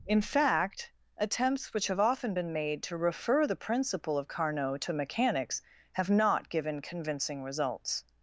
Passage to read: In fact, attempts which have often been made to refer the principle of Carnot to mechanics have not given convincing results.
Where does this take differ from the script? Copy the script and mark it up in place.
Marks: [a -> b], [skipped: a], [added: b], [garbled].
In fact, attempts which have often been made to refer the principle of Carnot to mechanics have not given convincing results.